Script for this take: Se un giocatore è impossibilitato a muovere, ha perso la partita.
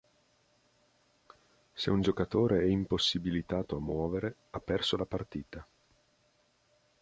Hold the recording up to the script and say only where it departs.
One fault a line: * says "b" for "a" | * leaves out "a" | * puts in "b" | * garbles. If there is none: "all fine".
all fine